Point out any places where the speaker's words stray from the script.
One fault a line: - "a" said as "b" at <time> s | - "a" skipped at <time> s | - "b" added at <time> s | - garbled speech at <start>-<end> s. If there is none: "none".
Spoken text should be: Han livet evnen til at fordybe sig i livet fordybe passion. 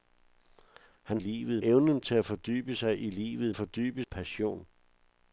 none